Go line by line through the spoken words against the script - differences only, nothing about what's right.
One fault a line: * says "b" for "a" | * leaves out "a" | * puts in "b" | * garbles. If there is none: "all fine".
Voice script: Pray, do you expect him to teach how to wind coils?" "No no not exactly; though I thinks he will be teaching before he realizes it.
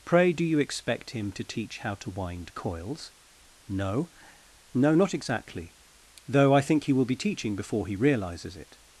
* says "think" for "thinks"